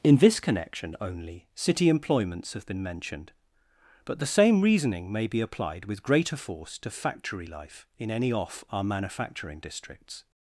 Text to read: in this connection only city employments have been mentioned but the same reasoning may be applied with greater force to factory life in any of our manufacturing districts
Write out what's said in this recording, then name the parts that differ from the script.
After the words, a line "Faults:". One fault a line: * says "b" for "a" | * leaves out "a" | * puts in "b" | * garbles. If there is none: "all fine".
in this connection only city employments have been mentioned but the same reasoning may be applied with greater force to factory life in any off our manufacturing districts
Faults:
* says "off" for "of"